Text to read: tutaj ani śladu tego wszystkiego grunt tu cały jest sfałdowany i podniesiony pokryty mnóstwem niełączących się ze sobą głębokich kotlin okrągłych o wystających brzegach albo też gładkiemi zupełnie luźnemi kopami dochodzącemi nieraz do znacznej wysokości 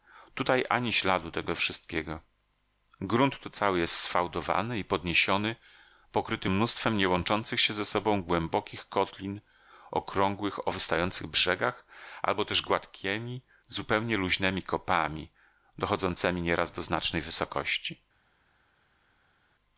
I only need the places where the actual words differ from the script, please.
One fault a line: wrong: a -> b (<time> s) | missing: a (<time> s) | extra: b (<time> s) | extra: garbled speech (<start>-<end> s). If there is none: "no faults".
no faults